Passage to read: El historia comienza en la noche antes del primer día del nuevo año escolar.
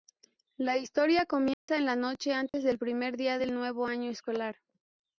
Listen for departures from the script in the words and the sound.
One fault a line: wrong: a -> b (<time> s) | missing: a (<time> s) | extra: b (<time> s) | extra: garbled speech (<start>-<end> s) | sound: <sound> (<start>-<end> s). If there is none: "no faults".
wrong: El -> La (0.6 s)
sound: dropout (1.5-1.7 s)
sound: dropout (2.5-2.5 s)